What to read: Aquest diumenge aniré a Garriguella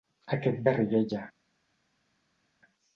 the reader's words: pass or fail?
fail